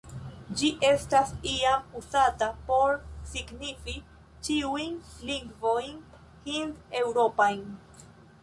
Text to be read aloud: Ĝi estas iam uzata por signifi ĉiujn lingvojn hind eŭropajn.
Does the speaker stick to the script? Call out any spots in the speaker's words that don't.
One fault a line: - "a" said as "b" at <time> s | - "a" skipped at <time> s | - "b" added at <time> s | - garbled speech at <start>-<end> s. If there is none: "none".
none